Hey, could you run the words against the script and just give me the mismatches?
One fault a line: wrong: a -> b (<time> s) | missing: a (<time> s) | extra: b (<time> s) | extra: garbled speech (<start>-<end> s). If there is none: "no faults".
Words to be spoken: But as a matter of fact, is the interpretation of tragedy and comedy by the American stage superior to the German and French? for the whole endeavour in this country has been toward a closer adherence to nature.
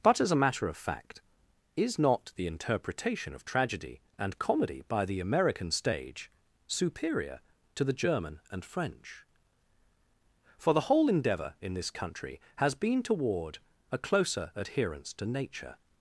extra: not (2.0 s)